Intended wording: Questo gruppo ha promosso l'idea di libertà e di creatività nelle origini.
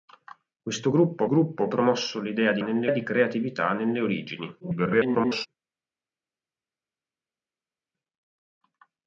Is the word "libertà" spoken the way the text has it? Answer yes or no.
no